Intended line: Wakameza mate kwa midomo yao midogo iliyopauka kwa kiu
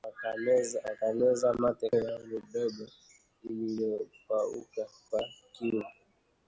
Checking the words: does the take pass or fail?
fail